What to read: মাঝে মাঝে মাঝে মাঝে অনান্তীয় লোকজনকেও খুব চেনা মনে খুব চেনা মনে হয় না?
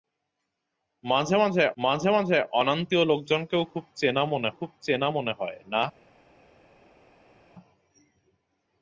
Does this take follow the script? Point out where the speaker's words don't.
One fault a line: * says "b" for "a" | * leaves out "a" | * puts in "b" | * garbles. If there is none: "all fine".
all fine